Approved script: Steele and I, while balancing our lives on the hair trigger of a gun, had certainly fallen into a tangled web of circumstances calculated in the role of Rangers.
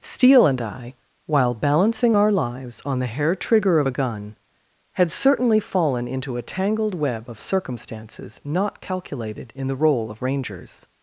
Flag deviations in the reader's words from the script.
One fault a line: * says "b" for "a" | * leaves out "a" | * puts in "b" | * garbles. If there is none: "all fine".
* puts in "not"